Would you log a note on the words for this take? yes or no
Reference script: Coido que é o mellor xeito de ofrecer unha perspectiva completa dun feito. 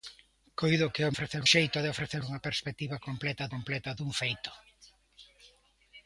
yes